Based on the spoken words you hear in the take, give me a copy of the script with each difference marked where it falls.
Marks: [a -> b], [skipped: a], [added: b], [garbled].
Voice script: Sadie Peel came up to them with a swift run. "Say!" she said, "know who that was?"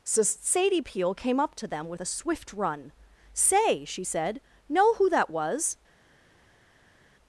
[added: so] Sadie Peel came up to them with a swift run. "Say!" she said, "know who that was?"